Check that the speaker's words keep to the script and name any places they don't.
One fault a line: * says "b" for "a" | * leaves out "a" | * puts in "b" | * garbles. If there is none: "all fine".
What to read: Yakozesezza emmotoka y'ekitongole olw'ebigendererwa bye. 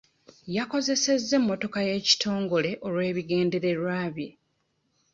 all fine